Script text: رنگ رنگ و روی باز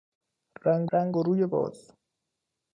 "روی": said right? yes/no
yes